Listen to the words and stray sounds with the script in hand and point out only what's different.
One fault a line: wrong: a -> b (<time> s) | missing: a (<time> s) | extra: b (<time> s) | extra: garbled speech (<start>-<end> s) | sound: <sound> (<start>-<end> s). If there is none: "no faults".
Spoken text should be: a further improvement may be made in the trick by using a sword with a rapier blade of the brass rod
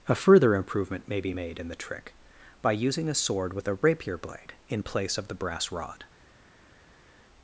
extra: in place (4.7 s)